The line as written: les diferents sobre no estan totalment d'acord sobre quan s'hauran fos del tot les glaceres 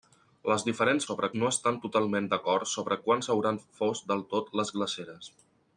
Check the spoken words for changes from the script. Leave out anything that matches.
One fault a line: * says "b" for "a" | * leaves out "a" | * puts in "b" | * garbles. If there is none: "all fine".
all fine